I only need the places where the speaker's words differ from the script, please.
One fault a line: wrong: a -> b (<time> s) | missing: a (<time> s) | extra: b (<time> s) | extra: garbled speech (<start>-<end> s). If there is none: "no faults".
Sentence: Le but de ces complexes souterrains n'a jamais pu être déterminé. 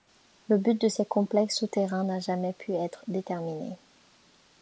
no faults